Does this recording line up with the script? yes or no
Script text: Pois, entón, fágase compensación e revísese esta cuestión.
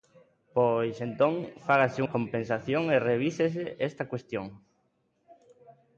yes